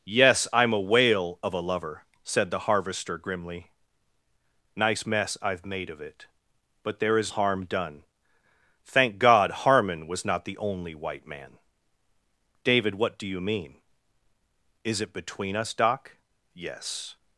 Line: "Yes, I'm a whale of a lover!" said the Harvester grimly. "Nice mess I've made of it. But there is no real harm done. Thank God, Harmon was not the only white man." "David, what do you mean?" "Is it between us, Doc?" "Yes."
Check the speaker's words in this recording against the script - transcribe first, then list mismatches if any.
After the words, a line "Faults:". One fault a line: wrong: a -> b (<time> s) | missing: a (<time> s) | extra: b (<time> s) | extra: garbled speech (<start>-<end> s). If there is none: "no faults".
"Yes, I'm a whale of a lover!" said the Harvester grimly. "Nice mess I've made of it. But there is harm done. Thank God, Harmon was not the only white man." "David, what do you mean?" "Is it between us, Doc?" "Yes."
Faults:
missing: no real (7.3 s)